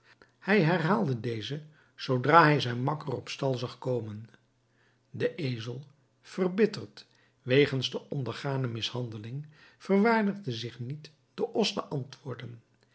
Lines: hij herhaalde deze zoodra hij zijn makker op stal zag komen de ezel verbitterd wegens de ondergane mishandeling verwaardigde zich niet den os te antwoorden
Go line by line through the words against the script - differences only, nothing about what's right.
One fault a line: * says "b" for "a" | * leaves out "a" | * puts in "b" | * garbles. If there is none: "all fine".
all fine